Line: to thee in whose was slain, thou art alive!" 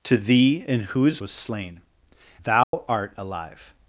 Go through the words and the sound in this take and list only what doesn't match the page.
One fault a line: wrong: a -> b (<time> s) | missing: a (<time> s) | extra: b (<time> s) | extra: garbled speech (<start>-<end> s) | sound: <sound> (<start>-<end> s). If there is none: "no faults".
sound: dropout (2.6-2.7 s)